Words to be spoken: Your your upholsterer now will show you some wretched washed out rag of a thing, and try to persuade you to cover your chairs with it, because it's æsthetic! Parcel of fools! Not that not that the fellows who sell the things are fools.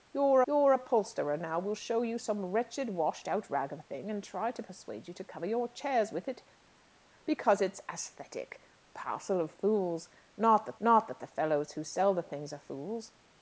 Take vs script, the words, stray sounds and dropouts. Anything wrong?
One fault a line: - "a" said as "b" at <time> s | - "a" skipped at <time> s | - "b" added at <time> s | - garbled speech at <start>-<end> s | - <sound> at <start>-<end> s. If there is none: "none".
none